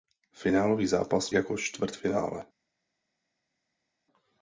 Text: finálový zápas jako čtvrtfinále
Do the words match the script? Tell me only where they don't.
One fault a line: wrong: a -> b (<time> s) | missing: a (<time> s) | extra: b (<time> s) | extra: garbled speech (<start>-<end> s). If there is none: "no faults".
no faults